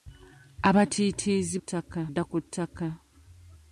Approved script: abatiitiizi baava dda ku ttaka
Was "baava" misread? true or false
true